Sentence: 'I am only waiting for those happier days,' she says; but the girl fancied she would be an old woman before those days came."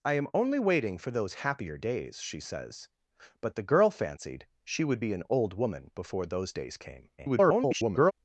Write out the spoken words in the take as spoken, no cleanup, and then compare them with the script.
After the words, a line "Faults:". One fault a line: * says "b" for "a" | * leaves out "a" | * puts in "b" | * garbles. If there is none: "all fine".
'I am only waiting for those happier days,' she says; but the girl fancied she would be an old woman before those days came." [garbled]
Faults:
* garbles